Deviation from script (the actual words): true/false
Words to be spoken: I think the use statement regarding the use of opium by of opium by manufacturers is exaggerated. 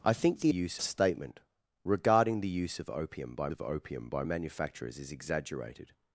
false